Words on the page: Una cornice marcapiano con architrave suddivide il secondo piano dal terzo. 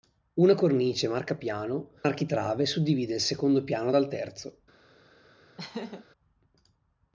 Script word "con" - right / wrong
wrong